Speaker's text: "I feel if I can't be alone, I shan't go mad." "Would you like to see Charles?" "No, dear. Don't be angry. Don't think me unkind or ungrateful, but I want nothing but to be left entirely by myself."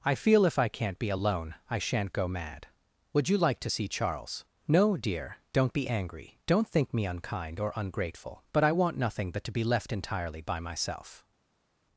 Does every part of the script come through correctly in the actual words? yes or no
yes